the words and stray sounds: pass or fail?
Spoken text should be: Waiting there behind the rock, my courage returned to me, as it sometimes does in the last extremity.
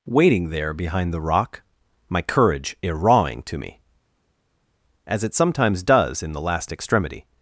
fail